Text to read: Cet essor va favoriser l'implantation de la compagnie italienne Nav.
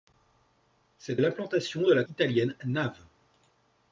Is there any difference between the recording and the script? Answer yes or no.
yes